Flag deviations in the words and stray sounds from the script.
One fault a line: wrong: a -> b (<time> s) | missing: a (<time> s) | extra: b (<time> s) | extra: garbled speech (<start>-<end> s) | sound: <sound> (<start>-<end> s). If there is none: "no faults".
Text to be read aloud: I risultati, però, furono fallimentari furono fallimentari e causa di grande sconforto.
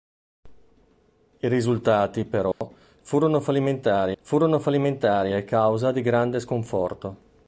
sound: dropout (2.5-2.6 s)